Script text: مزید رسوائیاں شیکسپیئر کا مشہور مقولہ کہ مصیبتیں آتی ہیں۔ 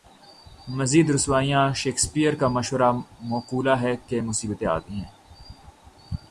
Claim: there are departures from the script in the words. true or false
true